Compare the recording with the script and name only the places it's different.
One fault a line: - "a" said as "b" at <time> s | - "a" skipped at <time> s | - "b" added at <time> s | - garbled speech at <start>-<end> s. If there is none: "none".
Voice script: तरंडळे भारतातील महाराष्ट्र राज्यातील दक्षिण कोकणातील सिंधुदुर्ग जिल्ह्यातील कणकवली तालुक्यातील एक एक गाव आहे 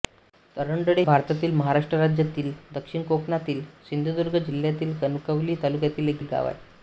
none